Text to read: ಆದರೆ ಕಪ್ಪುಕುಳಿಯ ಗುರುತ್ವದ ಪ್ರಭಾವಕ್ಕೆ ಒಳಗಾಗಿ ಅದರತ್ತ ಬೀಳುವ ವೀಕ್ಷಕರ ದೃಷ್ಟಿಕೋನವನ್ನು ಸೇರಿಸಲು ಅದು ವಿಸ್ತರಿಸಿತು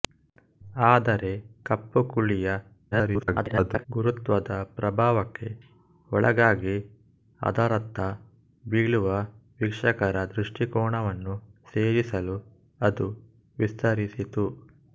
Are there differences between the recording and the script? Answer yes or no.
yes